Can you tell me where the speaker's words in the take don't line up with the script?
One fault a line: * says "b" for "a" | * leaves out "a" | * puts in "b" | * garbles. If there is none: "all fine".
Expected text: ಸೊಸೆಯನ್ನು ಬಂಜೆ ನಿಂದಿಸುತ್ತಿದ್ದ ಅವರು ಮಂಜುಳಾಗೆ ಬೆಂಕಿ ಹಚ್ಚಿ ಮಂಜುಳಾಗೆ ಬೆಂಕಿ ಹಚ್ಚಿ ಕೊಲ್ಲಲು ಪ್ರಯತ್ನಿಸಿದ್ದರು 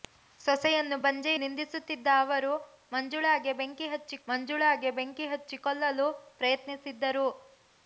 all fine